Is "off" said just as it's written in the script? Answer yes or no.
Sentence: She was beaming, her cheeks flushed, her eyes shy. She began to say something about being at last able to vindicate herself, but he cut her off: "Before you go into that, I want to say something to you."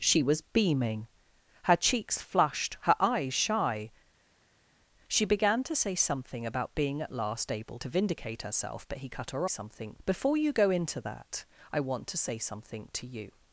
no